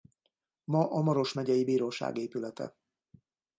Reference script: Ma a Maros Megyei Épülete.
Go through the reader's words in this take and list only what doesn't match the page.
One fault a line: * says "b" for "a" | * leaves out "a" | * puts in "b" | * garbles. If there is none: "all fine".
* puts in "Bíróság"